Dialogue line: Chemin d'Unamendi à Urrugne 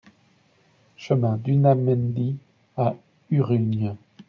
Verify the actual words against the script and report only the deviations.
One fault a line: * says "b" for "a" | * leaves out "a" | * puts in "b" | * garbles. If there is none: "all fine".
all fine